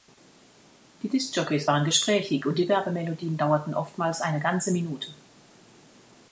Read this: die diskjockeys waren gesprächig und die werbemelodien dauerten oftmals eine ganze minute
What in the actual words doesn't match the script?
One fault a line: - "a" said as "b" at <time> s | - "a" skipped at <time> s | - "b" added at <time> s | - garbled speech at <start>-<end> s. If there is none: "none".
none